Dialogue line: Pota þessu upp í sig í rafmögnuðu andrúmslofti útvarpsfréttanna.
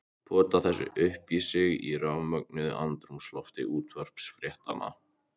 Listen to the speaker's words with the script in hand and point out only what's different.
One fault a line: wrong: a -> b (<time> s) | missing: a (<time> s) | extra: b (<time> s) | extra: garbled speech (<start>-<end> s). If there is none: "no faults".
no faults